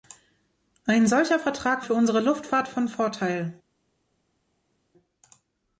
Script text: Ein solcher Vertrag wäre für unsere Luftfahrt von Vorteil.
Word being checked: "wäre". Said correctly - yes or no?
no